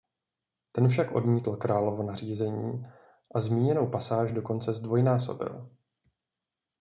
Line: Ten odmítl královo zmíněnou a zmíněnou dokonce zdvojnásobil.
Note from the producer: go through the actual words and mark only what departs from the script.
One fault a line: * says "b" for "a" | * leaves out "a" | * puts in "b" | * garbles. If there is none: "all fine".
* puts in "však"
* says "nařízení" for "zmíněnou"
* puts in "pasáž"